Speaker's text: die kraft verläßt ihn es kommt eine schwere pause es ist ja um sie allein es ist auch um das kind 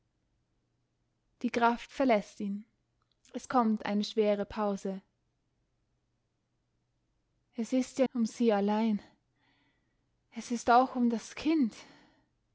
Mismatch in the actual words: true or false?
false